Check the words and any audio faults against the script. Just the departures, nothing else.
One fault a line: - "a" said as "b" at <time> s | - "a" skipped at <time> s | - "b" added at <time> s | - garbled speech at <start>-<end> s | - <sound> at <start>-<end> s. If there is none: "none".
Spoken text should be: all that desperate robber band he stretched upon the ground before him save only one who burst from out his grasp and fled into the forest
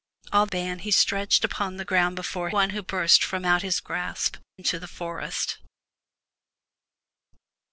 - "that desperate robber" skipped at 0.5 s
- "him save only" skipped at 2.5 s
- "and fled" skipped at 4.4 s